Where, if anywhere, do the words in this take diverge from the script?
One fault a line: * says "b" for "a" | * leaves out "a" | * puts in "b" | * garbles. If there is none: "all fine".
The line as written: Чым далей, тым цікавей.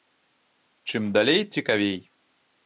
* leaves out "тым"